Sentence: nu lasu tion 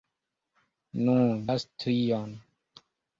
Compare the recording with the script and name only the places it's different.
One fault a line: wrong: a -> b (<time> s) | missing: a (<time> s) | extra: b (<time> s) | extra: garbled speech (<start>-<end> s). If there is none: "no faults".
no faults